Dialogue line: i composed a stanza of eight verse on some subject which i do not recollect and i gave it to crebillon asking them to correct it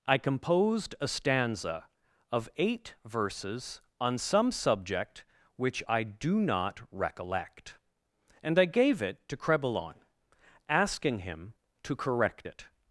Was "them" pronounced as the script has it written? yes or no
no